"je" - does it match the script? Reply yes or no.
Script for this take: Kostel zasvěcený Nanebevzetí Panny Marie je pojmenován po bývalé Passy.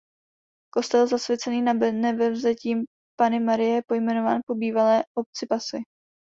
yes